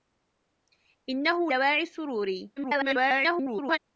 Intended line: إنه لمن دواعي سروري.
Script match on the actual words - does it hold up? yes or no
no